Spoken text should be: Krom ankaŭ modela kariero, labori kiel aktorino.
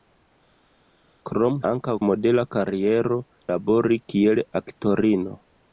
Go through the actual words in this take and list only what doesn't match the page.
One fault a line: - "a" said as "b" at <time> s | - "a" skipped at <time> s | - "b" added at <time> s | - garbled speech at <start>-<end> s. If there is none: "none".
none